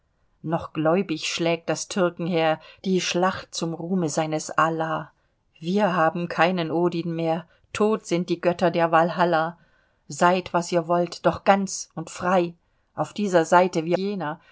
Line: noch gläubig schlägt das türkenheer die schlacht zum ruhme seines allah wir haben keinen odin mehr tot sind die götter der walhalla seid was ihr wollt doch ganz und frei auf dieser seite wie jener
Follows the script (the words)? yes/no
yes